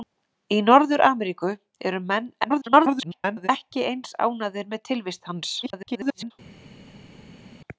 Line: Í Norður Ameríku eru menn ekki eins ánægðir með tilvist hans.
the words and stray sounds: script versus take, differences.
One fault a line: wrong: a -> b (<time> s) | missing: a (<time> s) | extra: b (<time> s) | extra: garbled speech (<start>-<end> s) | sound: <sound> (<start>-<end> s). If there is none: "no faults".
extra: garbled speech (2.4-3.5 s)
extra: garbled speech (5.6-6.3 s)